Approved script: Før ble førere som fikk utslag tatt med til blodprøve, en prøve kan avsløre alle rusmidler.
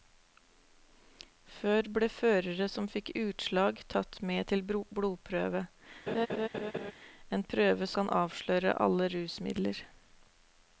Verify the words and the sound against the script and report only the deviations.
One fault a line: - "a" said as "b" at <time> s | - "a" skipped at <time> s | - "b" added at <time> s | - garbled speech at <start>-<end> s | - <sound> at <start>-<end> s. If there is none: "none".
- laugh at 6.1-6.9 s